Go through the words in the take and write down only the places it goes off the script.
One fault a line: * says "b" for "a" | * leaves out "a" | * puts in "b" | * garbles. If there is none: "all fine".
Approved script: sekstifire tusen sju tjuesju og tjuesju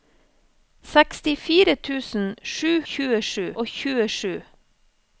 all fine